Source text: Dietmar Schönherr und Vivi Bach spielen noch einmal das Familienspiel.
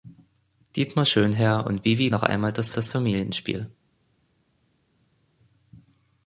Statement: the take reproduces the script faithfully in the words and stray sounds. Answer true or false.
false